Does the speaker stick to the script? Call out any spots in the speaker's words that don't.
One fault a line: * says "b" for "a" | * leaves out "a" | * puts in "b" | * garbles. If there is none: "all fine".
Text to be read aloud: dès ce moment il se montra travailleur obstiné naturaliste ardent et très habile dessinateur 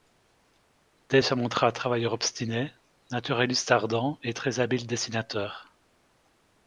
* leaves out "ce moment il"